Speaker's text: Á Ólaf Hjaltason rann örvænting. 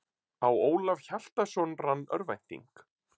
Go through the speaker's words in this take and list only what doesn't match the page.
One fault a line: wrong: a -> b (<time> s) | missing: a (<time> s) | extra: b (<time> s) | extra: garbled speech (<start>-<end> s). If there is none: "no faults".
no faults